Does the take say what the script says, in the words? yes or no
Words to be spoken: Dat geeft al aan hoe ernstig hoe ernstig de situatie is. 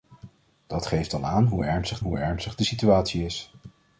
yes